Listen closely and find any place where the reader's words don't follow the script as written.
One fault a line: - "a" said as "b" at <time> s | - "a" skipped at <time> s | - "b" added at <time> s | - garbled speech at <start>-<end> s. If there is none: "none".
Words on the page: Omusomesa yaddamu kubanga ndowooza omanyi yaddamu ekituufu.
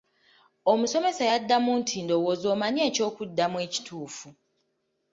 - "kubanga" said as "nti" at 1.8 s
- "yaddamu" said as "ekyokuddamu" at 2.9 s